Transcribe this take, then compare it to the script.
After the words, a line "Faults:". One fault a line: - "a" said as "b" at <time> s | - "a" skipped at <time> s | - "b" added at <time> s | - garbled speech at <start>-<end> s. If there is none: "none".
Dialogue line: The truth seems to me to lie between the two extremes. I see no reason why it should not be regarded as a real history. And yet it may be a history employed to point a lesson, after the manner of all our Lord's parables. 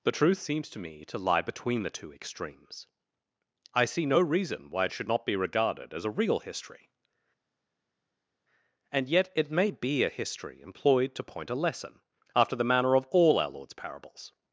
The truth seems to me to lie between the two extremes. I see no reason why it should not be regarded as a real history. And yet it may be a history employed to point a lesson, after the manner of all our Lord's parables.
Faults:
none